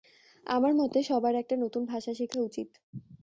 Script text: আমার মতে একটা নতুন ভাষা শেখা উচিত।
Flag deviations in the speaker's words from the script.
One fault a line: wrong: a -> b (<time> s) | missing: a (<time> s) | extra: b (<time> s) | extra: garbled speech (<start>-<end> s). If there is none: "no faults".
extra: সবার (1.0 s)